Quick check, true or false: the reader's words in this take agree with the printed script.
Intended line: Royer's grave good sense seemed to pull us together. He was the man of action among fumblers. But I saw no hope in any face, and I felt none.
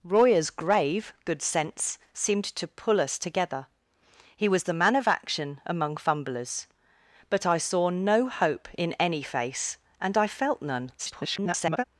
false